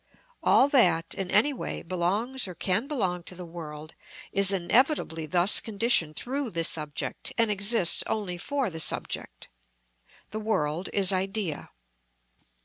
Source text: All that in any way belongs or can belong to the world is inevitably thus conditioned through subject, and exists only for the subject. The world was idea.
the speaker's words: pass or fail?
fail